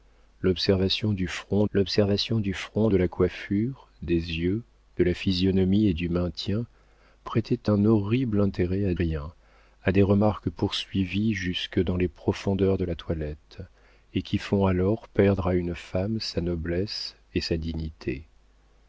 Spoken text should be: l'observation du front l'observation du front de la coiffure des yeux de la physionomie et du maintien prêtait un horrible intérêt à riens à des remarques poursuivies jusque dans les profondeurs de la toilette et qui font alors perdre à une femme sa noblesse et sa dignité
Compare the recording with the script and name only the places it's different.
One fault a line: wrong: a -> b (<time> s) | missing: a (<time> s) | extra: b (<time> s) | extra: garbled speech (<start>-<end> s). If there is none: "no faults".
no faults